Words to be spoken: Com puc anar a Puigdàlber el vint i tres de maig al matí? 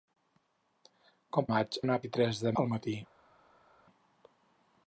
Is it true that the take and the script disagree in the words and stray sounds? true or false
true